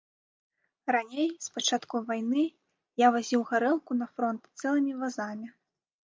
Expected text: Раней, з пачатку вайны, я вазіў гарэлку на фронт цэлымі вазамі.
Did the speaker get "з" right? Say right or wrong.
right